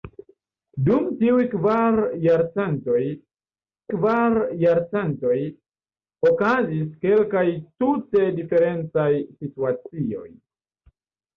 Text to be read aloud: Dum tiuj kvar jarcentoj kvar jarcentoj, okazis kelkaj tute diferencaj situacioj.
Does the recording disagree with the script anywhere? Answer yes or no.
no